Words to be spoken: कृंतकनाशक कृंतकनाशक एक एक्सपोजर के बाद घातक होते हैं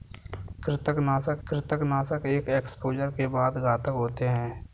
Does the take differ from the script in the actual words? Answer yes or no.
no